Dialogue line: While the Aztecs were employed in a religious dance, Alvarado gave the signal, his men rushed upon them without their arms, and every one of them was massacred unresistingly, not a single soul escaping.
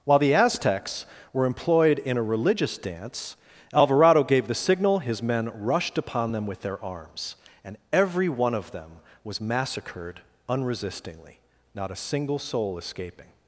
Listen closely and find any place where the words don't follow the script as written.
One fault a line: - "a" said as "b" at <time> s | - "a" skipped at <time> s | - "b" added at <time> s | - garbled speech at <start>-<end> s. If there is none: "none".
- "without" said as "with" at 6.5 s